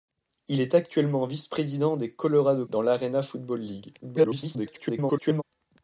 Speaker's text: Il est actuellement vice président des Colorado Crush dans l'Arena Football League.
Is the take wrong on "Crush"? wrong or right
wrong